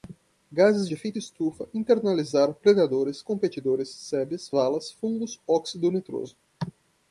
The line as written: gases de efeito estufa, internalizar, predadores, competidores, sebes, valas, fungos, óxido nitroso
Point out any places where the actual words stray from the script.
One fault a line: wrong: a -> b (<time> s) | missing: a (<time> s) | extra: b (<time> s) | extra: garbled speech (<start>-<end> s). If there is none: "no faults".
no faults